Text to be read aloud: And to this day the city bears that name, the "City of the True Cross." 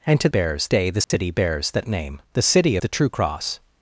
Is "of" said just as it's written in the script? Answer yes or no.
no